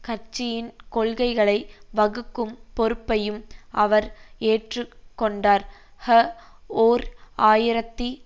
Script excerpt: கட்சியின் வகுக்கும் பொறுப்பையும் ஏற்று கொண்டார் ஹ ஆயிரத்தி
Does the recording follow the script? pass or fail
fail